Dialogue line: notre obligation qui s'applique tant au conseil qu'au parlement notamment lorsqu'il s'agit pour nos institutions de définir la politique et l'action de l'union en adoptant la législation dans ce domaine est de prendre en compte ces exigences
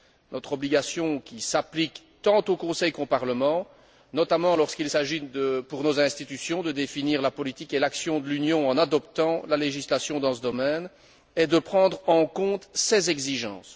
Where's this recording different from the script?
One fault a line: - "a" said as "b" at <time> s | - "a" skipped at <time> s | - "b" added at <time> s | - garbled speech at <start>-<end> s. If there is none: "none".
none